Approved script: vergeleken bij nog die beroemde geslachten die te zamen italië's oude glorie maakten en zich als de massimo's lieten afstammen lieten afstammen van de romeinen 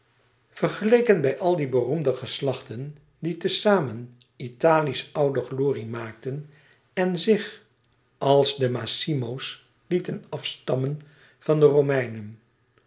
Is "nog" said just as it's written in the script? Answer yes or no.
no